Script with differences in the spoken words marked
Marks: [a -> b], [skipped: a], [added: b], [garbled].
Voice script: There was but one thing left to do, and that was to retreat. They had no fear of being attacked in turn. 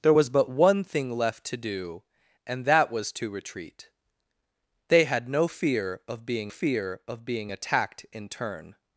There was but one thing left to do, and that was to retreat. They had no fear of being [added: fear of being] attacked in turn.